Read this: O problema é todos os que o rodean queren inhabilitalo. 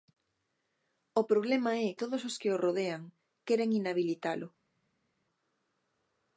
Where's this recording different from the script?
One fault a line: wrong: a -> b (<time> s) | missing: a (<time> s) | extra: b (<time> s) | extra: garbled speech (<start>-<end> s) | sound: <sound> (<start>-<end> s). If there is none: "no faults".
no faults